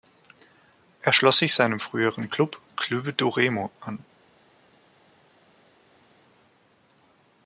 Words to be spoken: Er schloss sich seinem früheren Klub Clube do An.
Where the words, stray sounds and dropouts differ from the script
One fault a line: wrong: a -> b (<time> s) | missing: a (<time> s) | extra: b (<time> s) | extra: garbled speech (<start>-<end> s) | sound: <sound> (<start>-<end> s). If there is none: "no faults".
extra: Remo (3.3 s)